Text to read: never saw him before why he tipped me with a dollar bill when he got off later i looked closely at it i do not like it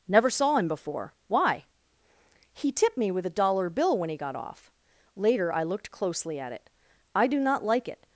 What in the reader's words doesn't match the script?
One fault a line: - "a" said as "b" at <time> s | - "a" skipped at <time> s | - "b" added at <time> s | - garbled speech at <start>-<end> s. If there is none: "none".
none